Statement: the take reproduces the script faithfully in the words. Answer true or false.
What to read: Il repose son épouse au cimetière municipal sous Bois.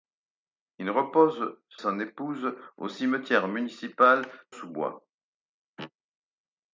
true